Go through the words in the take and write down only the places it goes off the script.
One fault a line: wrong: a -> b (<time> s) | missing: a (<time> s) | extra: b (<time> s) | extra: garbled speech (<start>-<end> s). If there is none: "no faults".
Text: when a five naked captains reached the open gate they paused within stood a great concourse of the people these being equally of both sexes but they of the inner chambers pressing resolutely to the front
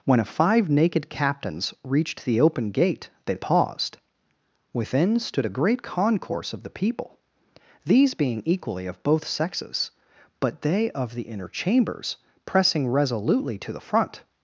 no faults